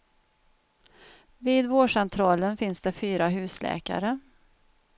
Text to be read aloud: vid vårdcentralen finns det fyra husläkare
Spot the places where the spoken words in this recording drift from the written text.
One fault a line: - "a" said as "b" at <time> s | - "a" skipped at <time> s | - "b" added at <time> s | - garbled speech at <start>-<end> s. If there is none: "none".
none